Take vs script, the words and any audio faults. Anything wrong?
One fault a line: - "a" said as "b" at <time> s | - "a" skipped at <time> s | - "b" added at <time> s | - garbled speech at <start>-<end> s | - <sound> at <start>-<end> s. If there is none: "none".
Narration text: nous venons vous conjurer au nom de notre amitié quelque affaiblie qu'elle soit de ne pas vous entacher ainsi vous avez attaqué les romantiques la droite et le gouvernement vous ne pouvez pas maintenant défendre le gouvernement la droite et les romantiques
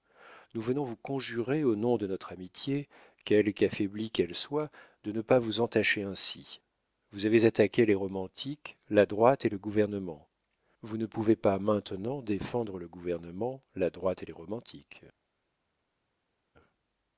none